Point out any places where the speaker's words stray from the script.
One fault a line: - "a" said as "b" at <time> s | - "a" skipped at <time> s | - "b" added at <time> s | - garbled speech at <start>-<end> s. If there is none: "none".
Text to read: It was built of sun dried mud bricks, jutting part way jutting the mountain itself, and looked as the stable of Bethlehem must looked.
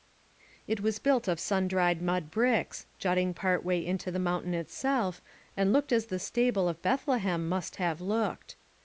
- "jutting" said as "into" at 3.9 s
- "have" added at 7.8 s